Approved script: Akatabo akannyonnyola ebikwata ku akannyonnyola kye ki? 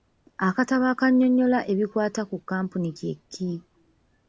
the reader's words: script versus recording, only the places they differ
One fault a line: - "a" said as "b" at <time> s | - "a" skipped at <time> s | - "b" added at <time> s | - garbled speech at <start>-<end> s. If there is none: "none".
- "akannyonnyola" said as "kkampuni" at 2.4 s